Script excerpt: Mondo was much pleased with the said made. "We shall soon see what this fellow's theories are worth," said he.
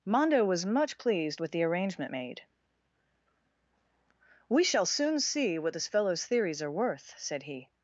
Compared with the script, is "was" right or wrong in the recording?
right